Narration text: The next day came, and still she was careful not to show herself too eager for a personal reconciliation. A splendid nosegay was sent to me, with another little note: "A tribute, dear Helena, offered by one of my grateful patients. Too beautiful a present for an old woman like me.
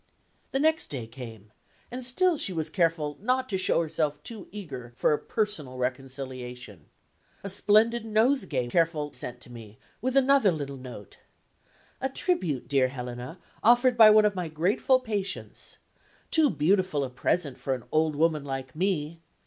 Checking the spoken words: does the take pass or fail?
fail